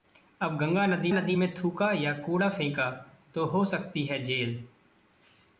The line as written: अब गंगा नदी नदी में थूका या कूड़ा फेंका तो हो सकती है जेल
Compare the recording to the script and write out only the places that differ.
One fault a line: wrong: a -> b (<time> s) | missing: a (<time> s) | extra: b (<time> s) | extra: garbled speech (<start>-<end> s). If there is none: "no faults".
no faults